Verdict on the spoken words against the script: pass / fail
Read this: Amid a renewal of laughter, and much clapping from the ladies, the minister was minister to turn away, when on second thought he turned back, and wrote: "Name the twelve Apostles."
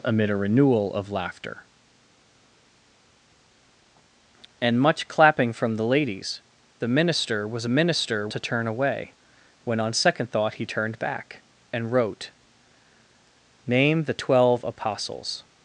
pass